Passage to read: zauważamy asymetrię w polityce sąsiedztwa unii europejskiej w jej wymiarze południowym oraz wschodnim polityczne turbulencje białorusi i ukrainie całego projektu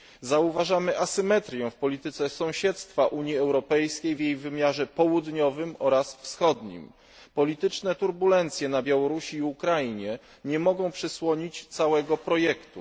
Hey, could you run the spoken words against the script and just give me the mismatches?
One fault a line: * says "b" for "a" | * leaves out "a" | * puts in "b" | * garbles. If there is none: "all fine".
* puts in "na"
* puts in "nie mogą przysłonić"